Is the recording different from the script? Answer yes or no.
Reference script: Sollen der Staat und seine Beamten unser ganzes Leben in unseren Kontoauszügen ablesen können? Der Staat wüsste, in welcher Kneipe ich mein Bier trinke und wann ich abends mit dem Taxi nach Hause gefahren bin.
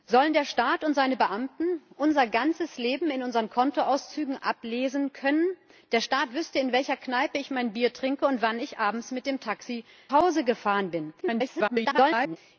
yes